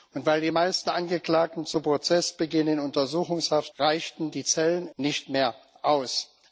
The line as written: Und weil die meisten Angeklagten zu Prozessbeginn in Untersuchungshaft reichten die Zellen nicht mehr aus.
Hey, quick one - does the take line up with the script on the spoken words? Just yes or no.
yes